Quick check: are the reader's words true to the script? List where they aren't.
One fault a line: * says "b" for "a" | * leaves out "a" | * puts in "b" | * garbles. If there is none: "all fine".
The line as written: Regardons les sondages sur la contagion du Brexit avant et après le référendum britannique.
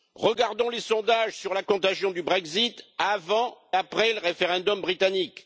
* leaves out "et"